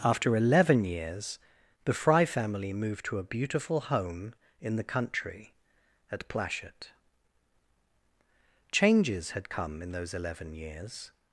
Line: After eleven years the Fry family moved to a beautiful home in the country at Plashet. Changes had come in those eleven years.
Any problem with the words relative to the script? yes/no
no